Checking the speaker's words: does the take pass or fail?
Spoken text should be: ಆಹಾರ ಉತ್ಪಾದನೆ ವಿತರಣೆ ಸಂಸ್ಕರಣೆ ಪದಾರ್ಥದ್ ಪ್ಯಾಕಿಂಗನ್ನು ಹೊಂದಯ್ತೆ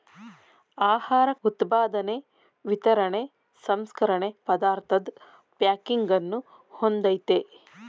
pass